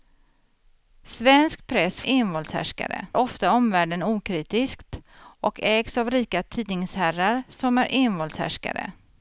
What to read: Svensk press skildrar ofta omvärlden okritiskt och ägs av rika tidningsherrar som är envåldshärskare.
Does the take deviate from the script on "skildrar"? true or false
true